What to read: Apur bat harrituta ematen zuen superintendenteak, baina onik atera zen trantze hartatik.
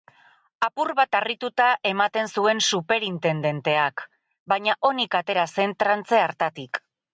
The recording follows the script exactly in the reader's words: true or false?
true